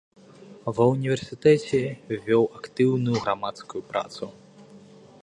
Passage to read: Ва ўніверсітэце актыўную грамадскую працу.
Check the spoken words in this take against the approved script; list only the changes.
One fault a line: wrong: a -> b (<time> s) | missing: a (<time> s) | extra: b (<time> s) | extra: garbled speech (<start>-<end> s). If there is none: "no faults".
extra: вёў (2.3 s)